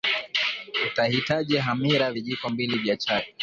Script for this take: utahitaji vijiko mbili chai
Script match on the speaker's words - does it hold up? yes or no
no